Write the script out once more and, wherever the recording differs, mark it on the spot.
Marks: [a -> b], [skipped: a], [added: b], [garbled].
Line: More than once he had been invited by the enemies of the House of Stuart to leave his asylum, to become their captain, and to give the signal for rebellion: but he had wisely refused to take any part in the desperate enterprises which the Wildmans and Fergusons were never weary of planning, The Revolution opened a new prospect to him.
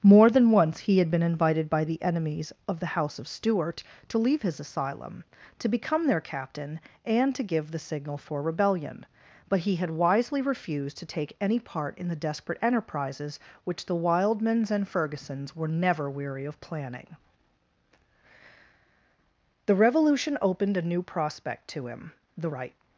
More than once he had been invited by the enemies of the House of Stuart to leave his asylum, to become their captain, and to give the signal for rebellion: but he had wisely refused to take any part in the desperate enterprises which the Wildmans and Fergusons were never weary of planning, The Revolution opened a new prospect to him. [added: The right]